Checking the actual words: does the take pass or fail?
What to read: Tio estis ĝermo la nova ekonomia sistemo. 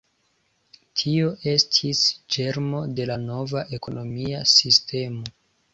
fail